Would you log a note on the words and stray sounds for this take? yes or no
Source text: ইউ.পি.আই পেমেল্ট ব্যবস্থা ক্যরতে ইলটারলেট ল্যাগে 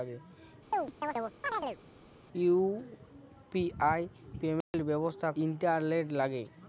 yes